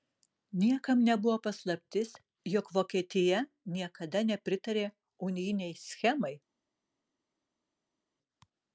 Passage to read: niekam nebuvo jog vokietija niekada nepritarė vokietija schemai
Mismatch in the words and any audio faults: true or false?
true